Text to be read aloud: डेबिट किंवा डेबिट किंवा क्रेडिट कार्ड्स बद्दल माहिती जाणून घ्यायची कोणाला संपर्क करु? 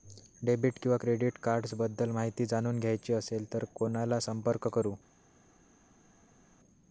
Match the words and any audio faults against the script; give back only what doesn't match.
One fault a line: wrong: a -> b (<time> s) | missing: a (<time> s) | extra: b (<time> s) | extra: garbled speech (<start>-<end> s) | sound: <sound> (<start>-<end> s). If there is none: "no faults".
missing: डेबिट किंवा (1.0 s)
extra: असेल तर (3.1 s)